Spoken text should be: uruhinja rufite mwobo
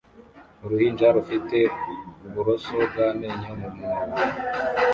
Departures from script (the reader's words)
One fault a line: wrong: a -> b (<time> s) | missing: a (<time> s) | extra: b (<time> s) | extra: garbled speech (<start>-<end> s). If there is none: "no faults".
extra: uburoso bw'amenyo mu (2.2 s)